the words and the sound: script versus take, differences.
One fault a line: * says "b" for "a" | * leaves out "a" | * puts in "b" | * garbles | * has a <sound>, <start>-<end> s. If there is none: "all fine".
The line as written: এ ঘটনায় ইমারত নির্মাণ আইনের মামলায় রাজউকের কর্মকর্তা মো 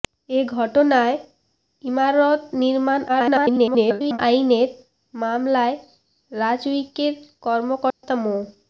* garbles
* has a dropout, 7.9-8.0 s